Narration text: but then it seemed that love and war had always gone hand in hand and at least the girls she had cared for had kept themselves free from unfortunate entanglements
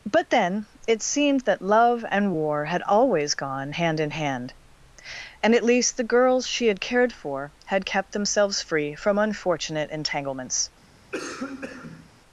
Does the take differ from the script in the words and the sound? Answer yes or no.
yes